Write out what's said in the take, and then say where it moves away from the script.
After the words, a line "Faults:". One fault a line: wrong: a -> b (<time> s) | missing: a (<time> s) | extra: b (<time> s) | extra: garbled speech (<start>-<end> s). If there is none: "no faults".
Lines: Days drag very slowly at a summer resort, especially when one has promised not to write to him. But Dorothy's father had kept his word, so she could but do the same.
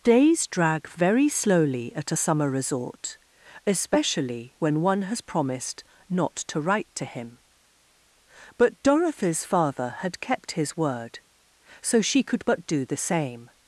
Days drag very slowly at a summer resort, especially when one has promised not to write to him. But Dorothy's father had kept his word, so she could but do the same.
Faults:
no faults